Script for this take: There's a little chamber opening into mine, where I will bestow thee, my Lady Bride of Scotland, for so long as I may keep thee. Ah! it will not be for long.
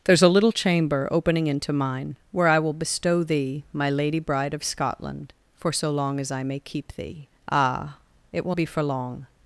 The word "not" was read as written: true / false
false